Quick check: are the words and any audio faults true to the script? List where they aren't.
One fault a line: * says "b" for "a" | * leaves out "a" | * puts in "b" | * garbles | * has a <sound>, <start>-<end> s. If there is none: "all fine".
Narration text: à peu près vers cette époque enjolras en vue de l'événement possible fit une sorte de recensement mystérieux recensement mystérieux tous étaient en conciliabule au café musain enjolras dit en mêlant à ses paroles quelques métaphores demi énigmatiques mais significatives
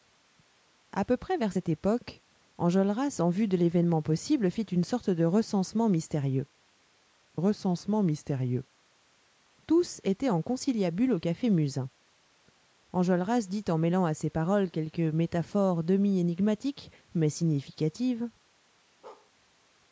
* has a bark, 19.0-19.3 s